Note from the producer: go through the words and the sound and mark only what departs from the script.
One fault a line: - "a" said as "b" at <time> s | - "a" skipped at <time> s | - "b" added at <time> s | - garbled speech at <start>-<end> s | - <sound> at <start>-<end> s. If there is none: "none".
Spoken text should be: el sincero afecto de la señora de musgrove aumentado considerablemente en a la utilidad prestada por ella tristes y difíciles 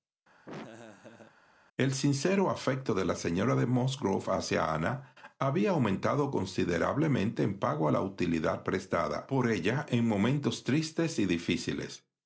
- laugh at 0.5-1.4 s
- "hacia ana había" added at 4.3 s
- "pago" added at 7.6 s
- "en momentos" added at 9.9 s